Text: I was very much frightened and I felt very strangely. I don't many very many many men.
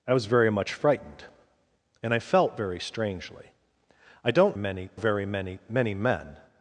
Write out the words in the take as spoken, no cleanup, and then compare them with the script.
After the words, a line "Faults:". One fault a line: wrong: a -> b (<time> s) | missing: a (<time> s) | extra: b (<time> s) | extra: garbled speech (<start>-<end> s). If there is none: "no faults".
I was very much frightened and I felt very strangely. I don't many very many many men.
Faults:
no faults